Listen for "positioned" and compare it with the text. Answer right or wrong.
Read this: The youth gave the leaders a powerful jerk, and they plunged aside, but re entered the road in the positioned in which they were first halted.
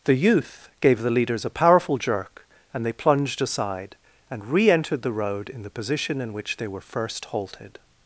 wrong